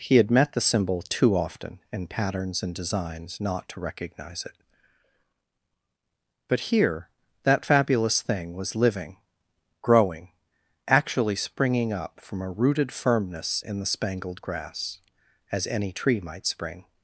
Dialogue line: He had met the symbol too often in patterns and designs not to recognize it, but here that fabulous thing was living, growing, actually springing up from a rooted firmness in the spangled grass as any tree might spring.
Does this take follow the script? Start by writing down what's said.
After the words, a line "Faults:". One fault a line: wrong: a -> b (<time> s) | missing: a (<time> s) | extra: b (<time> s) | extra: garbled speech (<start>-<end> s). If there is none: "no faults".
He had met the symbol too often in patterns and designs not to recognize it, but here that fabulous thing was living, growing, actually springing up from a rooted firmness in the spangled grass as any tree might spring.
Faults:
no faults